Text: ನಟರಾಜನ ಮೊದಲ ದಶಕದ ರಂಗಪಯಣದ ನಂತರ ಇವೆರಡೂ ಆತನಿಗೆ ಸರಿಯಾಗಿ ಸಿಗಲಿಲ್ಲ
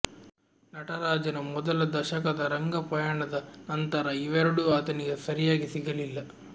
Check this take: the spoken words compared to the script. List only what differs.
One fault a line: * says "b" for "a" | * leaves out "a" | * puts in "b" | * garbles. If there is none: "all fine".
all fine